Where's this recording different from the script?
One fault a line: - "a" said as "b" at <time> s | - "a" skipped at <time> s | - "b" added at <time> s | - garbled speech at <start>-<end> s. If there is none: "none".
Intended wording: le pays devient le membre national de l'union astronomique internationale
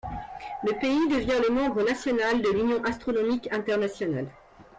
none